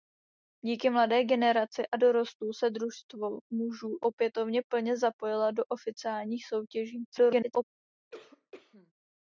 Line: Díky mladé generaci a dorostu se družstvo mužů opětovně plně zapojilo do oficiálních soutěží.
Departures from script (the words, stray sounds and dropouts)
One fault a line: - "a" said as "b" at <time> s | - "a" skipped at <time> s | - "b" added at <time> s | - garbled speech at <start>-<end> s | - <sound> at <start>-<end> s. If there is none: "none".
- garbled speech at 7.1-7.6 s
- cough at 8.1-8.9 s